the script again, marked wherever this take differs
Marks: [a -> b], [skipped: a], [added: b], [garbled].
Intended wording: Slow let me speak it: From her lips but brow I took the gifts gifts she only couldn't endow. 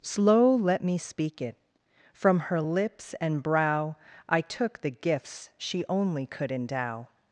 Slow let me speak it: From her lips [but -> and] brow I took the gifts [skipped: gifts] she only [couldn't -> could] endow.